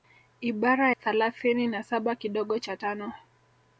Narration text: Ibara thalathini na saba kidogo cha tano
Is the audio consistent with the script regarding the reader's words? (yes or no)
yes